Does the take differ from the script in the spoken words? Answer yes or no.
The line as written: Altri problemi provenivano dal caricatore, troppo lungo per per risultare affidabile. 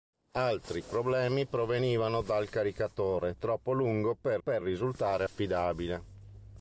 no